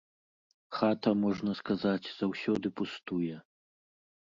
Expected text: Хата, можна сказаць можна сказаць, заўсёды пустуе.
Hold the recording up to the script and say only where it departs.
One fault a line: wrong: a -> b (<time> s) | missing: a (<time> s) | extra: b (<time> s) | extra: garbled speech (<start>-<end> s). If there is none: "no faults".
missing: можна сказаць (2.1 s)